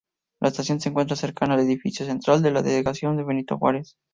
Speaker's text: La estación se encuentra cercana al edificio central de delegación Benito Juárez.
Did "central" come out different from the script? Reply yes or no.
no